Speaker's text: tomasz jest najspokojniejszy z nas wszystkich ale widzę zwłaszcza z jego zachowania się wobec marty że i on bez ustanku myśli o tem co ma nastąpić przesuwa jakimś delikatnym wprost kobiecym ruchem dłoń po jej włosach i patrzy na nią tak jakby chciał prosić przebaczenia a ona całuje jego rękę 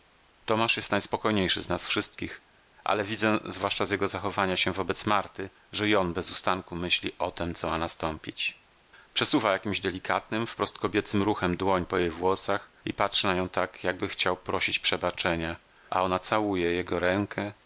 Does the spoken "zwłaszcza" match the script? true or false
true